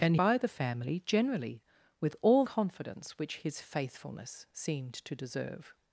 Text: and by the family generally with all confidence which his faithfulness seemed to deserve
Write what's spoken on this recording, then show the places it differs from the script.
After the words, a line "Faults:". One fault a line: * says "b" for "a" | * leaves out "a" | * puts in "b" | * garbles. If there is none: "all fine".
and by the family generally with all confidence which his faithfulness seemed to deserve
Faults:
all fine